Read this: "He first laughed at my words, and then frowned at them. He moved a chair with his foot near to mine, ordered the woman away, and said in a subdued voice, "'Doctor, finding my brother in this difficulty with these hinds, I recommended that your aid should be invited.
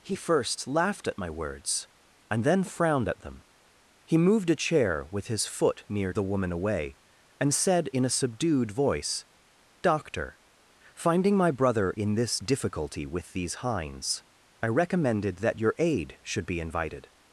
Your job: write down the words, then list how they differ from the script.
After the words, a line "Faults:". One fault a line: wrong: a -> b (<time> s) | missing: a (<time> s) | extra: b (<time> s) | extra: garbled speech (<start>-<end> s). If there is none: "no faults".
"He first laughed at my words, and then frowned at them. He moved a chair with his foot near the woman away, and said in a subdued voice, "'Doctor, finding my brother in this difficulty with these hinds, I recommended that your aid should be invited.
Faults:
missing: to mine ordered (6.1 s)